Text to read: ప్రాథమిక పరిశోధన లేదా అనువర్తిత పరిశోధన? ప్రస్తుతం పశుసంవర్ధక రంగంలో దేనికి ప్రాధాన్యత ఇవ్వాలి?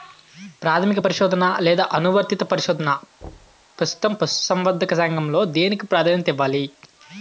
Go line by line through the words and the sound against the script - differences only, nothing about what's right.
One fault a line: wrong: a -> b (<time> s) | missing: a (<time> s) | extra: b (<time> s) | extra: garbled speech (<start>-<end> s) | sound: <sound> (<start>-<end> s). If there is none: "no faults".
sound: thud (3.2-3.7 s)